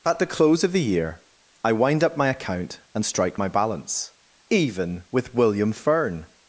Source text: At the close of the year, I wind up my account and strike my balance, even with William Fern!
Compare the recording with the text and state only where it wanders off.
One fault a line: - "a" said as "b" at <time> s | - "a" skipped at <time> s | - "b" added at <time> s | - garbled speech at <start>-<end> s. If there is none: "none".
none